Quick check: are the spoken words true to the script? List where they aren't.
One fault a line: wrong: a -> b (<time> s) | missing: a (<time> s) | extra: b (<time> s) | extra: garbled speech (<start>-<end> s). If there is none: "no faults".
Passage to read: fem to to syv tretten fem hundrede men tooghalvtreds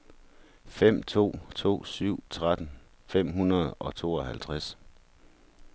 wrong: men -> og (3.7 s)